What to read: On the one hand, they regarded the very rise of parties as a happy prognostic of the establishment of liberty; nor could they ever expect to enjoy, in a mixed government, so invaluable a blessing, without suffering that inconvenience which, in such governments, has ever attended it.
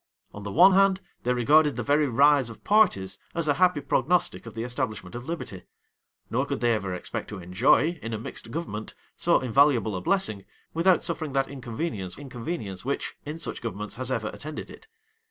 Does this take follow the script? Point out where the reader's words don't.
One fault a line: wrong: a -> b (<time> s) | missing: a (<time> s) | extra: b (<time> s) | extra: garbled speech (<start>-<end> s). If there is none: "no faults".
extra: inconvenience (12.2 s)